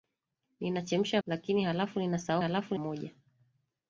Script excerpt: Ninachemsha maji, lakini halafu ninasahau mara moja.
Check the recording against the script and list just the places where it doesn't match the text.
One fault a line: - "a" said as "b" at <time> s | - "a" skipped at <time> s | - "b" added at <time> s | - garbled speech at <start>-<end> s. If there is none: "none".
- "maji" skipped at 1.2 s
- "mara" said as "halafu" at 2.4 s